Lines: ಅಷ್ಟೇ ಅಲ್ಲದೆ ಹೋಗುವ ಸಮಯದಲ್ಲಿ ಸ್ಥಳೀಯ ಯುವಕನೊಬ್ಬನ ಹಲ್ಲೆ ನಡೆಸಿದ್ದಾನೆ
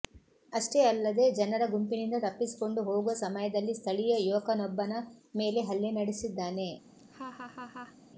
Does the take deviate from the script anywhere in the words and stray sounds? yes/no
yes